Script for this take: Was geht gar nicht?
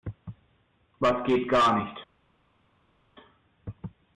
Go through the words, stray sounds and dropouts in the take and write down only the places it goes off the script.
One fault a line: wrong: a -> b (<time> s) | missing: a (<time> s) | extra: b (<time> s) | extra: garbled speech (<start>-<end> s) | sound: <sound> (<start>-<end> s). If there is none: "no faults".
no faults